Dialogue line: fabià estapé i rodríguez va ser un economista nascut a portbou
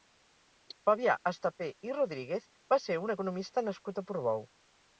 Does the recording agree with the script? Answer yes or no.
yes